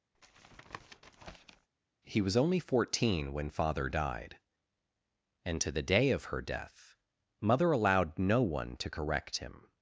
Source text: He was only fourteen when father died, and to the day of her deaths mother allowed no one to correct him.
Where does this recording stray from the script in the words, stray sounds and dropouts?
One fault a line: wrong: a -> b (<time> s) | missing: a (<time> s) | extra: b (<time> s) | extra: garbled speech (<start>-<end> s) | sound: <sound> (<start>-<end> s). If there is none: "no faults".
sound: tap (0.1-1.7 s)
wrong: deaths -> death (6.4 s)